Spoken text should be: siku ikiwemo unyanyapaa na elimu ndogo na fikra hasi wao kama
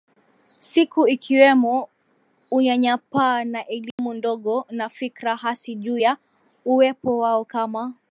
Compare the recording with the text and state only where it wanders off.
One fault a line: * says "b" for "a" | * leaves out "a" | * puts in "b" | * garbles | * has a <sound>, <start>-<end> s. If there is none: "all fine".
* has a dropout, 3.9-4.0 s
* puts in "juu ya uwepo"